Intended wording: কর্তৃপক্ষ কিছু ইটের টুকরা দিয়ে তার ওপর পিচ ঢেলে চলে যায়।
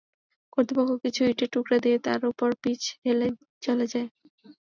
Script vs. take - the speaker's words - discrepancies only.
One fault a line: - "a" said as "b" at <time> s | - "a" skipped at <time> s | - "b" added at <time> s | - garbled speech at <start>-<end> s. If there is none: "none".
none